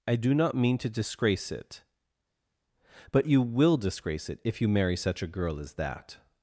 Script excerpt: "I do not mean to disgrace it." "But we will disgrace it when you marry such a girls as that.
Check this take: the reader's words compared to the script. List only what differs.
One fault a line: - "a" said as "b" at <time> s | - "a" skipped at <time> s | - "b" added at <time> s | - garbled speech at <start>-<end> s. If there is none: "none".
- "we" said as "you" at 3.3 s
- "when" said as "if" at 4.4 s
- "girls" said as "girl" at 5.3 s